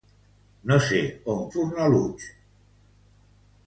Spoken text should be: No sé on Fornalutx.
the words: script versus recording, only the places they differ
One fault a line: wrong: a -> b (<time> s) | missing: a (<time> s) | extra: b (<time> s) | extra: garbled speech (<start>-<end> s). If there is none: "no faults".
no faults